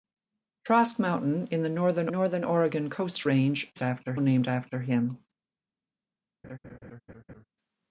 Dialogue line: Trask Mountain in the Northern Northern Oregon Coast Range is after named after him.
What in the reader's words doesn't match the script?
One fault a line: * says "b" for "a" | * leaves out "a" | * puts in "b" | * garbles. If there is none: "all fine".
all fine